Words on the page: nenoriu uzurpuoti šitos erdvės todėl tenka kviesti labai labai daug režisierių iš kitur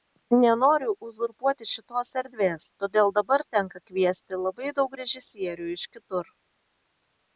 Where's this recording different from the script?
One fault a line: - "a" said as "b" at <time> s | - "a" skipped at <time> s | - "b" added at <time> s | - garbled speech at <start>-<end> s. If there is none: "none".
- "dabar" added at 3.2 s
- "labai" skipped at 4.7 s